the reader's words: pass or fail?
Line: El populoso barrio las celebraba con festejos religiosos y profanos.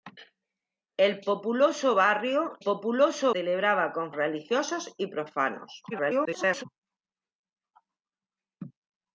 fail